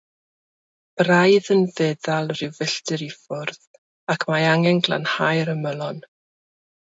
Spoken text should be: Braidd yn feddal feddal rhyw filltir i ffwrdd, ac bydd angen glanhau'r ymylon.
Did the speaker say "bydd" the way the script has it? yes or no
no